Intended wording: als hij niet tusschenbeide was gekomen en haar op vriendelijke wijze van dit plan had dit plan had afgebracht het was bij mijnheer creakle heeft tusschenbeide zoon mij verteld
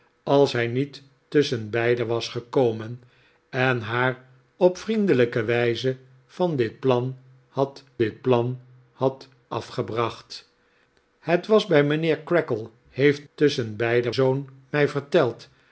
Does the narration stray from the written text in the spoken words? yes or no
no